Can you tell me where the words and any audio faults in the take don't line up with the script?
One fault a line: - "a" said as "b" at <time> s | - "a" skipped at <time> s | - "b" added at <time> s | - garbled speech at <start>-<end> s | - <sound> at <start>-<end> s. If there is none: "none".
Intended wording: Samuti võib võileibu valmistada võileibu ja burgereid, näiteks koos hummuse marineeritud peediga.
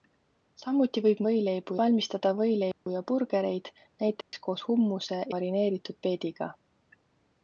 - dropout at 2.7-2.9 s
- dropout at 4.2-4.3 s